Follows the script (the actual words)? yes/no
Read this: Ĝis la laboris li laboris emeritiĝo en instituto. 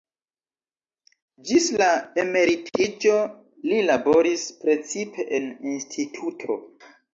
no